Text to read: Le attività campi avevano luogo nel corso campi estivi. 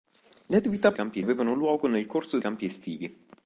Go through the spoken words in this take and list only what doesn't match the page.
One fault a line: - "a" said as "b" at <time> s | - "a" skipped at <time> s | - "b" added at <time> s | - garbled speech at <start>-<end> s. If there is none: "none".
none